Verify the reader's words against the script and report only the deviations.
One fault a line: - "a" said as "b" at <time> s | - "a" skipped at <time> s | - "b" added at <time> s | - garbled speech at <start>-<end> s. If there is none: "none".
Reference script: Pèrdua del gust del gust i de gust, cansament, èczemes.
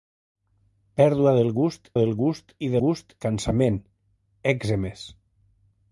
none